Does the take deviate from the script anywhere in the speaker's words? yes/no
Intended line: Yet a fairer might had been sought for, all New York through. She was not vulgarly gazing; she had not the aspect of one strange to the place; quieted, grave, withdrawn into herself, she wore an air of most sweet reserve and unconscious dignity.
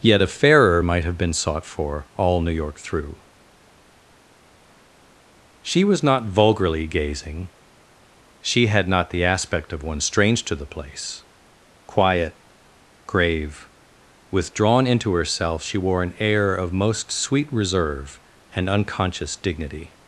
yes